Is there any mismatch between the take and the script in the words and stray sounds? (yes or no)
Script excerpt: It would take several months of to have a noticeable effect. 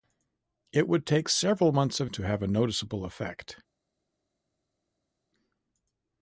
no